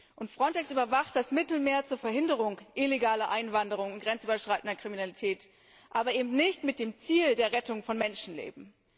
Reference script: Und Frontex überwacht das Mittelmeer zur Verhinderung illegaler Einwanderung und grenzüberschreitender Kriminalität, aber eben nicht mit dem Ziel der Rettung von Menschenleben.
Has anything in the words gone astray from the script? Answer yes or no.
no